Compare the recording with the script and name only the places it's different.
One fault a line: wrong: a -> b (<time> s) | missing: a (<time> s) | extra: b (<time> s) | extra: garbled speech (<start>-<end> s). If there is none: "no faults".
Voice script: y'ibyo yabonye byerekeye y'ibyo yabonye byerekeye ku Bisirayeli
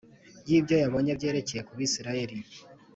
missing: y'ibyo yabonye byerekeye (1.6 s)